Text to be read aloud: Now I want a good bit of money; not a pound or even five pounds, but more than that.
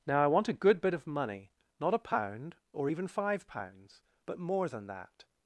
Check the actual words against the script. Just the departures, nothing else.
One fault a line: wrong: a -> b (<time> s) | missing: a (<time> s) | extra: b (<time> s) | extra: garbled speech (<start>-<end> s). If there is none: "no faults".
no faults